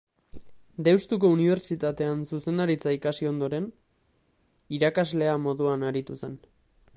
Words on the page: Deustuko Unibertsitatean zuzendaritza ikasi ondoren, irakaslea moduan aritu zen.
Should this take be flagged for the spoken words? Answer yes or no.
no